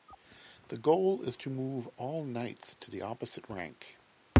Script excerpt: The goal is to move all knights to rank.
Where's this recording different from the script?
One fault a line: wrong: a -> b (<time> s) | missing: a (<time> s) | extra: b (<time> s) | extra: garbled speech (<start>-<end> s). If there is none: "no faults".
extra: the opposite (2.9 s)